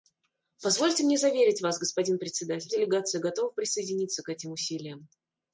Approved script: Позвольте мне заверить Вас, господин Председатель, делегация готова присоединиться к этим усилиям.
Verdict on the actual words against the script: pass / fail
pass